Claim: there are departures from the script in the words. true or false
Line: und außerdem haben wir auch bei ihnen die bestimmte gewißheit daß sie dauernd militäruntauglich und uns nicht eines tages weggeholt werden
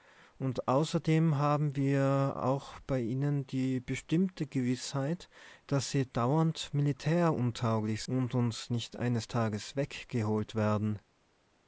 false